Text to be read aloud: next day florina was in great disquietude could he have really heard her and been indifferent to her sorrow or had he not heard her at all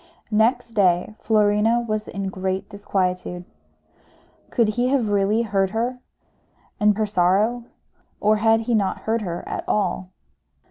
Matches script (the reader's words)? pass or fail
fail